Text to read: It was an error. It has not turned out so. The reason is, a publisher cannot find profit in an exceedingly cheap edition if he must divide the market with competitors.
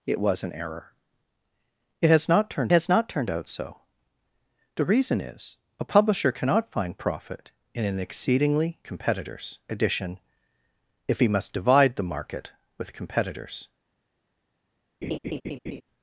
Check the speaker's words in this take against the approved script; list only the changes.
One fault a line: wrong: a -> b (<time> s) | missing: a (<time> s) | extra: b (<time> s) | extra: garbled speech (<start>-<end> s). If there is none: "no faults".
extra: has not turned (2.7 s)
wrong: cheap -> competitors (8.8 s)